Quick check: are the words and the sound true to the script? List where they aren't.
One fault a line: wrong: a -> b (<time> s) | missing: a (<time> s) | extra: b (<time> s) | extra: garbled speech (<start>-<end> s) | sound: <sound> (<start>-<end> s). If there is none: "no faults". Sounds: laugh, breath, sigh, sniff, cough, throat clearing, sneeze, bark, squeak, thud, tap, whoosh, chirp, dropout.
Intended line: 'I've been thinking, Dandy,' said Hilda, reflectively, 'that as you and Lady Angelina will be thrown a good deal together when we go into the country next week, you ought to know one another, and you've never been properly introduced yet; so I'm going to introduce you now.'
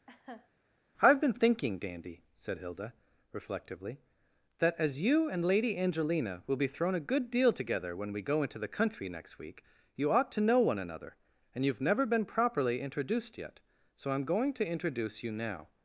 sound: laugh (0.1-0.5 s)